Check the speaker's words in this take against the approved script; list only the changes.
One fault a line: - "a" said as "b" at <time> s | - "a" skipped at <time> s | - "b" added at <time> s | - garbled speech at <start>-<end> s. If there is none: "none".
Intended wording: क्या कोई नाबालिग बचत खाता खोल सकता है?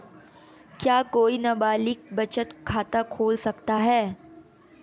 none